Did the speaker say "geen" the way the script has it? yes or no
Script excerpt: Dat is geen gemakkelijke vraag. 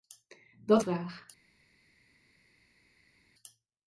no